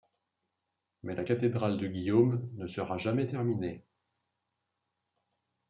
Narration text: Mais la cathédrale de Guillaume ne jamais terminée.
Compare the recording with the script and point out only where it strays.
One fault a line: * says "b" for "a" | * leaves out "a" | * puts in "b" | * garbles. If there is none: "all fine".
* puts in "sera"